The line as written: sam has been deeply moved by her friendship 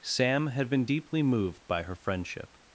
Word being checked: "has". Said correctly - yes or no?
no